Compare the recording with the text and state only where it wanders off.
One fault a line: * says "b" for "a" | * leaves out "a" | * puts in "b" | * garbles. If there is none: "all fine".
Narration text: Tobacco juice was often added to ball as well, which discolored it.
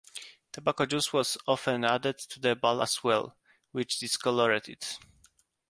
* puts in "the"